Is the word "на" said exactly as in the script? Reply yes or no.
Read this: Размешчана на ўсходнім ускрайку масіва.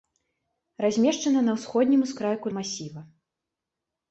yes